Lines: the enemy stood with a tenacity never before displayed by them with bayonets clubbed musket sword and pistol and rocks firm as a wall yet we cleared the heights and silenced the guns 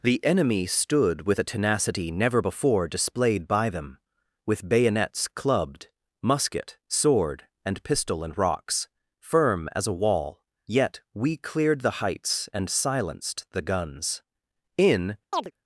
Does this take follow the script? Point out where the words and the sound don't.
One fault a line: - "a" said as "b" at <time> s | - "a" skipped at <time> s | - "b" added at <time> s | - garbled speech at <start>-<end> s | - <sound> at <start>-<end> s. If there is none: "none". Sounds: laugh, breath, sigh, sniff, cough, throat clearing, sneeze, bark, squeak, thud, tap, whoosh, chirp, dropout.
- "in" added at 14.8 s
- chirp at 15.3-15.5 s